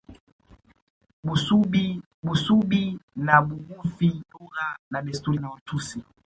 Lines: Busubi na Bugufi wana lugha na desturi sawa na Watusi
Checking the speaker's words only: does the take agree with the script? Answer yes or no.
no